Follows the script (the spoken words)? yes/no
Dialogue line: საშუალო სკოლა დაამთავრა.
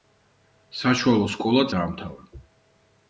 yes